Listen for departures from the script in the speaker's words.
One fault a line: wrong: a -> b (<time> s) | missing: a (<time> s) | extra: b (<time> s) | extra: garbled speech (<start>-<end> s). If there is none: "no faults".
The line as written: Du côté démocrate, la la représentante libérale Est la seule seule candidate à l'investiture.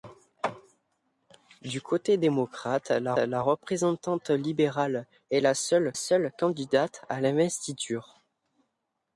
no faults